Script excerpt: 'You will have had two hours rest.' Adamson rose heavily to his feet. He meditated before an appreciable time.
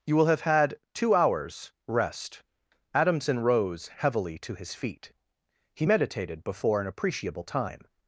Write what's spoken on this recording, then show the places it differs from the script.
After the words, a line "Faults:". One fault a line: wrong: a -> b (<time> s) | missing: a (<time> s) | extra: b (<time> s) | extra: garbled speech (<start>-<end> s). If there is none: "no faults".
'You will have had two hours rest.' Adamson rose heavily to his feet. He meditated before an appreciable time.
Faults:
no faults